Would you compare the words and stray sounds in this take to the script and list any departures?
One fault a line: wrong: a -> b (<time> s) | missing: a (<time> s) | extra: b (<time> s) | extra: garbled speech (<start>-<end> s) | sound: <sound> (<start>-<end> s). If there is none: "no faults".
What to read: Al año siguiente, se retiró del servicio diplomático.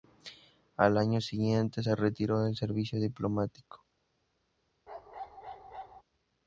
sound: bark (4.9-6.0 s)